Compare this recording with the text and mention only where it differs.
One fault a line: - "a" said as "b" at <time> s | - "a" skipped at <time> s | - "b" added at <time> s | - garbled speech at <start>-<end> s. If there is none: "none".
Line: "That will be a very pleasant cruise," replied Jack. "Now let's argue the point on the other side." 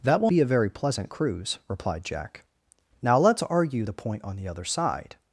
none